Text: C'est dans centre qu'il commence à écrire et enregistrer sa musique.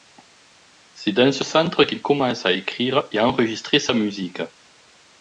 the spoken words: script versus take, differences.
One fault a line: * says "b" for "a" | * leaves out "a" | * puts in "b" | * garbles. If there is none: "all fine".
* puts in "ce"